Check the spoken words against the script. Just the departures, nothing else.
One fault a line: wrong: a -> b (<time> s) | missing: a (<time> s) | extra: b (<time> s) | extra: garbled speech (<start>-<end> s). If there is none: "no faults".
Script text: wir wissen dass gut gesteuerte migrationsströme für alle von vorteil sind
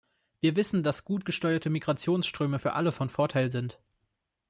no faults